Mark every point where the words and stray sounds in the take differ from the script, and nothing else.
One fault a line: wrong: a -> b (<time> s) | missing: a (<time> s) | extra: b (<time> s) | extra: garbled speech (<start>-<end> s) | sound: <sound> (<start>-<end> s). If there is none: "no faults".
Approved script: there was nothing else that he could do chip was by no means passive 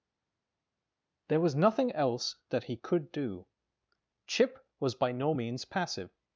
no faults